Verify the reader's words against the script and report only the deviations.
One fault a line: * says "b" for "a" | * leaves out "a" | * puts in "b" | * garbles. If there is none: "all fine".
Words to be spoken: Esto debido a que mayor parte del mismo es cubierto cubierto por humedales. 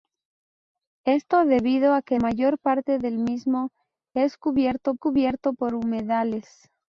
all fine